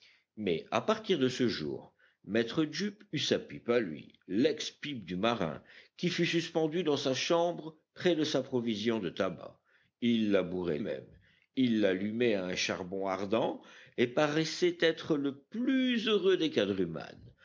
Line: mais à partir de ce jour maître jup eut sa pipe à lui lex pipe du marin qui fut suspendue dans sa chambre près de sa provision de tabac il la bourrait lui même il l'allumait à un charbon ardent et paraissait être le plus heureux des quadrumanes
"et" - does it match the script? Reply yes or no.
yes